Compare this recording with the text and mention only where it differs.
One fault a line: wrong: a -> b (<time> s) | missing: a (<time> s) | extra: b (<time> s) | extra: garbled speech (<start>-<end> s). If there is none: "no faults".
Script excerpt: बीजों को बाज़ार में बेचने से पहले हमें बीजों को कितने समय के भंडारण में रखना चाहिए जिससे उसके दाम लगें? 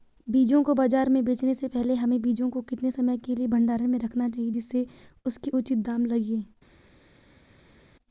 extra: लिए (3.3 s)
extra: उचित (5.5 s)